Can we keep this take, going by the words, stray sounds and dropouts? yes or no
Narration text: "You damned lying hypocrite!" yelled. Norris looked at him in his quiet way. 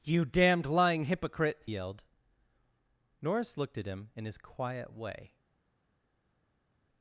yes